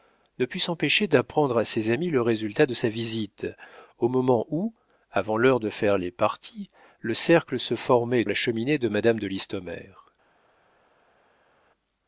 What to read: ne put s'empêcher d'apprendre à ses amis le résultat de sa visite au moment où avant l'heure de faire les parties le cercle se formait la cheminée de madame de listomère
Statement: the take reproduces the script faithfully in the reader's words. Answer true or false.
true